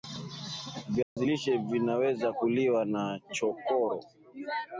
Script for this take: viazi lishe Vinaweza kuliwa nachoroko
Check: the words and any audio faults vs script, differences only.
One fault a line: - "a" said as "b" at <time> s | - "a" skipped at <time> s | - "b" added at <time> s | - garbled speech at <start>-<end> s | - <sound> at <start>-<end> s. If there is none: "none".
- dropout at 1.0-1.2 s